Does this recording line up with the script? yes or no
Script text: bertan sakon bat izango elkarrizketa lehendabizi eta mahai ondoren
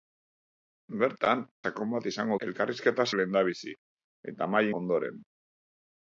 yes